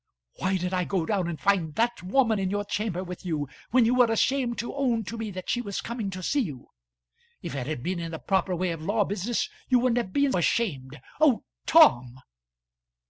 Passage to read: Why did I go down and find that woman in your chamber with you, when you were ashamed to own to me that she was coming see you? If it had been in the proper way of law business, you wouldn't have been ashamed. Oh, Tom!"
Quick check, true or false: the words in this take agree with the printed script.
false